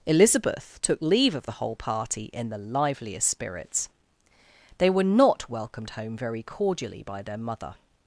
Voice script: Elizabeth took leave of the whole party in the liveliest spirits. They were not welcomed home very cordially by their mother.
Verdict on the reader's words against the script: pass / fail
pass